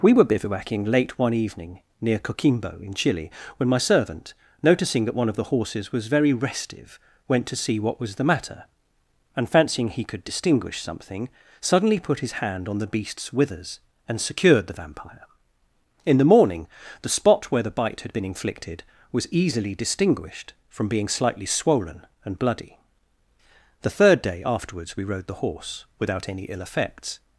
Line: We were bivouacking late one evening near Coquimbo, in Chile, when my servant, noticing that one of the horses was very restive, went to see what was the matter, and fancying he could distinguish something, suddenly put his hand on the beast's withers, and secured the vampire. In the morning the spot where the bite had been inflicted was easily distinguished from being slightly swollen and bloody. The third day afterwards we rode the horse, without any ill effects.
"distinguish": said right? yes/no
yes